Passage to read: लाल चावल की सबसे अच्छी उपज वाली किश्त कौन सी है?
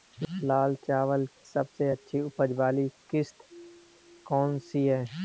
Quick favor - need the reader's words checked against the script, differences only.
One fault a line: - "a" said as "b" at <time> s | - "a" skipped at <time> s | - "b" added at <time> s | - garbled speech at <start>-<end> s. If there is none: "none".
- "की" skipped at 1.2 s